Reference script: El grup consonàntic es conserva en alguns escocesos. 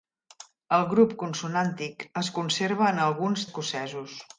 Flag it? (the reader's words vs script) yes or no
no